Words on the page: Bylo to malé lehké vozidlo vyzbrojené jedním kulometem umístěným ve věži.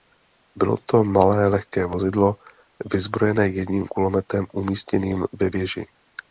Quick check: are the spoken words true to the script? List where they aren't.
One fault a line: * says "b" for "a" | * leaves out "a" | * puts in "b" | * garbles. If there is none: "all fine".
all fine